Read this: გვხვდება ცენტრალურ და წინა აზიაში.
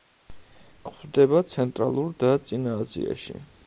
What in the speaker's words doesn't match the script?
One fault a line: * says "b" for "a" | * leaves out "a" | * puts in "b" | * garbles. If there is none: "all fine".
all fine